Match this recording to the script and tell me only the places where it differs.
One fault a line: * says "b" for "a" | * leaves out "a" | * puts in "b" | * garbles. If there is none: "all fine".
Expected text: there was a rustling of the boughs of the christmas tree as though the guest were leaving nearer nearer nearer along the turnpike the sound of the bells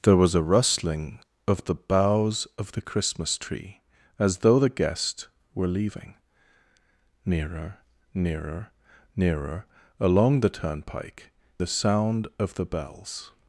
all fine